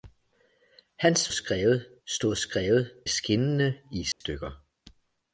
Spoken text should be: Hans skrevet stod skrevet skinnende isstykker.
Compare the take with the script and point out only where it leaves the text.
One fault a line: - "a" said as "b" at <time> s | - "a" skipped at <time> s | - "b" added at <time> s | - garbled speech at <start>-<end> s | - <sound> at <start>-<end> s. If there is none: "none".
- dropout at 4.1-4.2 s